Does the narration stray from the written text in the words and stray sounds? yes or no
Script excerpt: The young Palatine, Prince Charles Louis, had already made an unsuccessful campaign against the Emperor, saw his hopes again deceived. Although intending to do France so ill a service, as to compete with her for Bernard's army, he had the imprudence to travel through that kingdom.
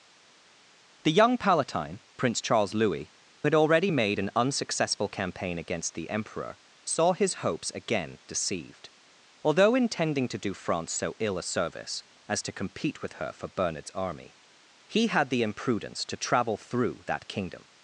no